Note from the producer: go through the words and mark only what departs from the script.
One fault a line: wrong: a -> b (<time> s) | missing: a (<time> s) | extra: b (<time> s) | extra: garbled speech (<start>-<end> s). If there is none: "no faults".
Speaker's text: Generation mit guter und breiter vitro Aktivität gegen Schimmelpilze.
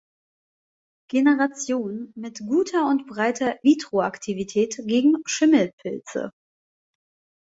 no faults